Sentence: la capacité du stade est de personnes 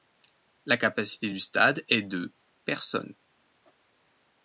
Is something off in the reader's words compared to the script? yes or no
no